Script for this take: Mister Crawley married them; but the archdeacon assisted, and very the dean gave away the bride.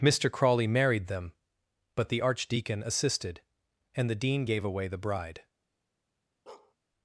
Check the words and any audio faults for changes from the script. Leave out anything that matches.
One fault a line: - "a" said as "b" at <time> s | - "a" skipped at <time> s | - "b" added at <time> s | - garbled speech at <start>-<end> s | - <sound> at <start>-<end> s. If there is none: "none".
- "very" skipped at 4.1 s
- bark at 6.5-6.7 s